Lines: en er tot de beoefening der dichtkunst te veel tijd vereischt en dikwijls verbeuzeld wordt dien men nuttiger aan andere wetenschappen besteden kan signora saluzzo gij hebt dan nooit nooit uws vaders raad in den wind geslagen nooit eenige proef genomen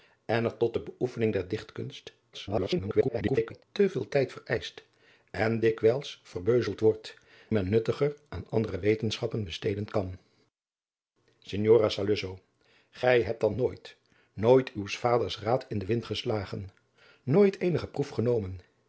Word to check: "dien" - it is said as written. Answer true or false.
false